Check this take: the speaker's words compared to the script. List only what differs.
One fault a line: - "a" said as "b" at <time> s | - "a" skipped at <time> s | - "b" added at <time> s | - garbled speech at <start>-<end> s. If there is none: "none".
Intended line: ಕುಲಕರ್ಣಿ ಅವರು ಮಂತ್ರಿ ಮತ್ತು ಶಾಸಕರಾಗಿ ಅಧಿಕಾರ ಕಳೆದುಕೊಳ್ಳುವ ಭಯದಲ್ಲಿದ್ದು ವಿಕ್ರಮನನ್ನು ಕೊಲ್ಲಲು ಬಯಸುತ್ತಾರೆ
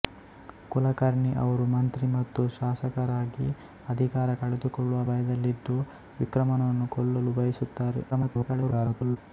- garbled speech at 8.1-9.2 s